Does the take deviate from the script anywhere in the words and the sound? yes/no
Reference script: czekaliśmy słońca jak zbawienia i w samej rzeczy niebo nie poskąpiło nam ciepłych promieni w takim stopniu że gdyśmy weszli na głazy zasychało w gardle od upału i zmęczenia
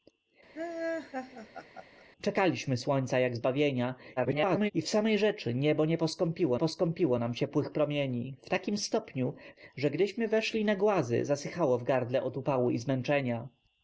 yes